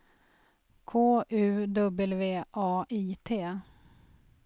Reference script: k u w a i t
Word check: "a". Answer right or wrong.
right